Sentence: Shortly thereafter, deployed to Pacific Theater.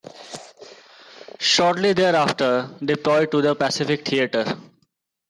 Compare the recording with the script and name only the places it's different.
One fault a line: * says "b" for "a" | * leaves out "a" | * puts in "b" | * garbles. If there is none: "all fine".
* puts in "the"